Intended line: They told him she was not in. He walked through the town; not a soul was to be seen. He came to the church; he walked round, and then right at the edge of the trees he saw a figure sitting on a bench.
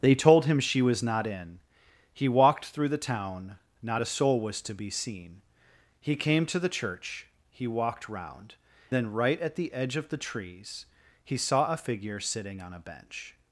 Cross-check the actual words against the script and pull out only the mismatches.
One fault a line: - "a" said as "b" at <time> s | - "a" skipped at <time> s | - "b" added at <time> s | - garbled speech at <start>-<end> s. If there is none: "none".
- "and" skipped at 8.6 s